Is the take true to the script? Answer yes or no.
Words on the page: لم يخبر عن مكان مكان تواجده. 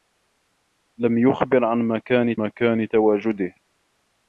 yes